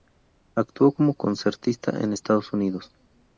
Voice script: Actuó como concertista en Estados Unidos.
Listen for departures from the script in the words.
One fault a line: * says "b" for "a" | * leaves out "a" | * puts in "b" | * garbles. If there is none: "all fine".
all fine